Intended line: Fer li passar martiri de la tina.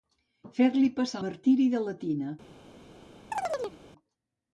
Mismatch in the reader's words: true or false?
false